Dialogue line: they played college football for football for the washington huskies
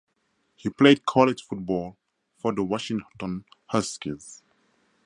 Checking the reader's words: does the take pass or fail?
fail